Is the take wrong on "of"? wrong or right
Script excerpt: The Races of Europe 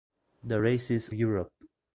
wrong